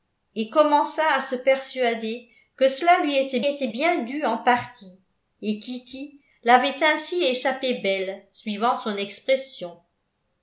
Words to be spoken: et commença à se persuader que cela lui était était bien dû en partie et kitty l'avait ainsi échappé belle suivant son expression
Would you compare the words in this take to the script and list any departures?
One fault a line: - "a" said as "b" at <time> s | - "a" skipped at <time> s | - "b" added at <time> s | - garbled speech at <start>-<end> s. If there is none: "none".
none